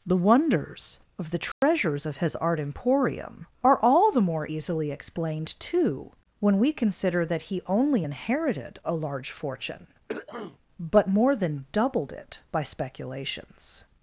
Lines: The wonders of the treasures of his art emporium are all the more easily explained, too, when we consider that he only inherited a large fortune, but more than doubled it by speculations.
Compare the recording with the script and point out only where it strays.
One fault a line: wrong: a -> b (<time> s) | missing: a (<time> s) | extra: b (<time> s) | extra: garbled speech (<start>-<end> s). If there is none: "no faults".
no faults